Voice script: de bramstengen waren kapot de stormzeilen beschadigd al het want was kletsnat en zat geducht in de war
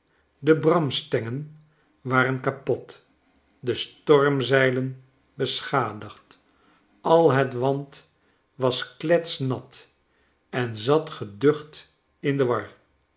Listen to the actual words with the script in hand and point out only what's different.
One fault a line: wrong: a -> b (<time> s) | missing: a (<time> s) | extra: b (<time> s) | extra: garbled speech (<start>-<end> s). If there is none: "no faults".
no faults